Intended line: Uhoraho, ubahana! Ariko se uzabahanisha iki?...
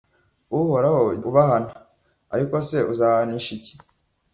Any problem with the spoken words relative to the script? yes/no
no